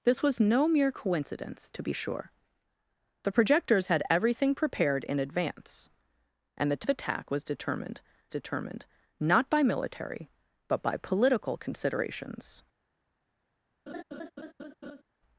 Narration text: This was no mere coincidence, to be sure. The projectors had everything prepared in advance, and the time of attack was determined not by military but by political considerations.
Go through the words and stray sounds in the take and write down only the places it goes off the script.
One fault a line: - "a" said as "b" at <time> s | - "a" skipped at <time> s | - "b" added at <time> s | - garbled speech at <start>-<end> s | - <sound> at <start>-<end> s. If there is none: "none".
- "time" skipped at 6.9 s
- "determined" added at 8.3 s
- laugh at 13.9-15.0 s